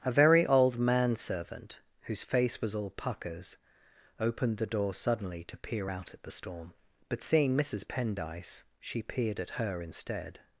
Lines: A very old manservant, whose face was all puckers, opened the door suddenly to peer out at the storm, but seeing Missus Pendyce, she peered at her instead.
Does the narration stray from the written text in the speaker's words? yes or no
no